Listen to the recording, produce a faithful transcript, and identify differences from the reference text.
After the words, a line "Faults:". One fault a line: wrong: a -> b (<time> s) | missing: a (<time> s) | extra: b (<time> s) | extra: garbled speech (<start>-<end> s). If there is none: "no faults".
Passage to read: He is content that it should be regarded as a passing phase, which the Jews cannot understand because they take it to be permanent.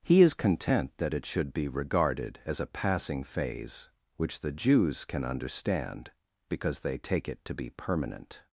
He is content that it should be regarded as a passing phase, which the Jews can understand because they take it to be permanent.
Faults:
wrong: cannot -> can (5.0 s)